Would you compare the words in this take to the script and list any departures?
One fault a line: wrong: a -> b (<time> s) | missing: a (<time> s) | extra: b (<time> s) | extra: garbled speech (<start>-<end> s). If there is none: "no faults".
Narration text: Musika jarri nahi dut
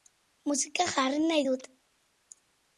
no faults